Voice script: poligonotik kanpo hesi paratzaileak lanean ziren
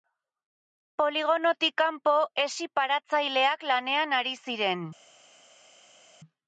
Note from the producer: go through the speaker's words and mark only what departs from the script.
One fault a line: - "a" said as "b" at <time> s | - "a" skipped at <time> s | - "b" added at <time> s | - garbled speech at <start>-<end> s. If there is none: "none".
- "ari" added at 4.2 s